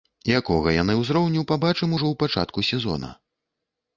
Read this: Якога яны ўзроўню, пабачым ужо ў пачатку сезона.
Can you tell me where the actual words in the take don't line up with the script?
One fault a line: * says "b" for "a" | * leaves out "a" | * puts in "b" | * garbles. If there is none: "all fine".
all fine